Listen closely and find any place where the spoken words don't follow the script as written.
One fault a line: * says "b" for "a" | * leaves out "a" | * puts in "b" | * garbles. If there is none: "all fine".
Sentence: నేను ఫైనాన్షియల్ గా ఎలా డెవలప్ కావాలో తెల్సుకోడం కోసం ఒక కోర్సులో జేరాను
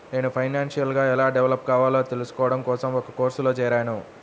all fine